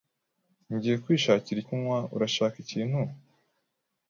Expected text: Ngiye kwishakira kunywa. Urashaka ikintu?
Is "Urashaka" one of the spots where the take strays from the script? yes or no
no